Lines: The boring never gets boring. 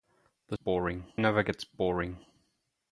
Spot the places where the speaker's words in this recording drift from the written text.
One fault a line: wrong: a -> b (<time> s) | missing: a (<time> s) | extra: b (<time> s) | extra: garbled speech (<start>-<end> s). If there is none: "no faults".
no faults